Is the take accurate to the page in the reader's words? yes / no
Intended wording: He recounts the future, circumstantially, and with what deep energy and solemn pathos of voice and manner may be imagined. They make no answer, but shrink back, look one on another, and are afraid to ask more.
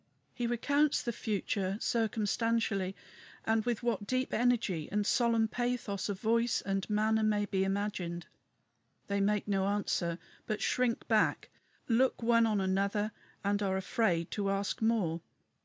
yes